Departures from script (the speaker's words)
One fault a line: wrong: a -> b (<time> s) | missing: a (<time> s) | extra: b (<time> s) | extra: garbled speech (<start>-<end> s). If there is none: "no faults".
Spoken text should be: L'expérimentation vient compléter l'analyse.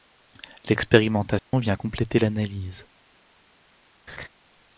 no faults